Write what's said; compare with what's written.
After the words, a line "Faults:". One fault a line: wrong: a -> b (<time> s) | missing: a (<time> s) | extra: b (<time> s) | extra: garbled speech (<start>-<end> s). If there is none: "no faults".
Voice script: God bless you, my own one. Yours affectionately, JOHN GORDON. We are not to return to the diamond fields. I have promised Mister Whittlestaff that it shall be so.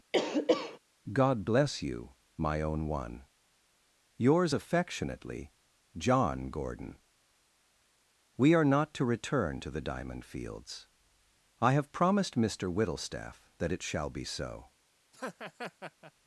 God bless you, my own one. Yours affectionately, JOHN GORDON. We are not to return to the diamond fields. I have promised Mister Whittlestaff that it shall be so.
Faults:
no faults